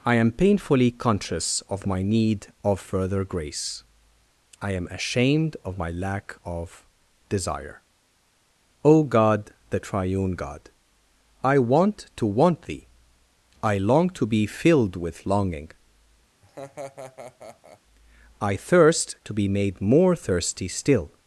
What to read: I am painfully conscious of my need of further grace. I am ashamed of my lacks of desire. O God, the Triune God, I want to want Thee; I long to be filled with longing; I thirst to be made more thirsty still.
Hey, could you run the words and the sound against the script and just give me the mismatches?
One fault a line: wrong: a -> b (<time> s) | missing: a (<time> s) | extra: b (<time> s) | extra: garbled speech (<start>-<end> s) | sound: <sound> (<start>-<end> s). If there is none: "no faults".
wrong: lacks -> lack (5.9 s)
sound: laugh (16.4-17.8 s)